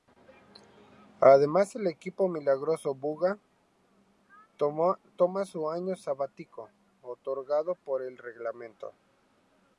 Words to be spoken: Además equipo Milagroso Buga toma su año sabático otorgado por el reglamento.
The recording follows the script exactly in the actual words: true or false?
false